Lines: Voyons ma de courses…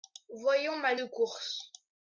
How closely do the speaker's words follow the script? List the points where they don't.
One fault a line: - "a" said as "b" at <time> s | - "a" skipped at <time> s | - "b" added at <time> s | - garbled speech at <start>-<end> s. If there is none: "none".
none